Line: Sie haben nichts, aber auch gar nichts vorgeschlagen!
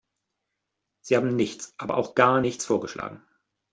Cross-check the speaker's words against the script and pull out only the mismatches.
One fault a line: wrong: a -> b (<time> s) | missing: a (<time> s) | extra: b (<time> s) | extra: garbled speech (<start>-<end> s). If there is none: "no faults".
no faults